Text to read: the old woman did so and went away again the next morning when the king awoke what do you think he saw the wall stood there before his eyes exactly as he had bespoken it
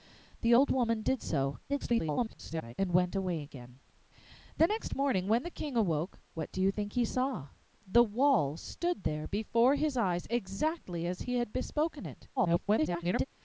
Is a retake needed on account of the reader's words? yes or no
yes